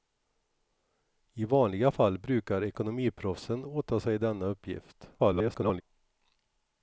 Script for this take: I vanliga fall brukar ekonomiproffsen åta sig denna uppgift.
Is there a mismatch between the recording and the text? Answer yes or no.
yes